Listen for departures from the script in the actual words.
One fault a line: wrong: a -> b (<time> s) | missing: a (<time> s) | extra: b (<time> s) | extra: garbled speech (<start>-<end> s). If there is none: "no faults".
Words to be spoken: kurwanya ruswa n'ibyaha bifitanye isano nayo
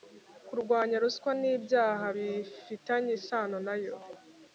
no faults